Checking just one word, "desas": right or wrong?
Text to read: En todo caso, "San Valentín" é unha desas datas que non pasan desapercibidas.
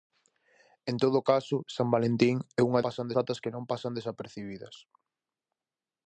wrong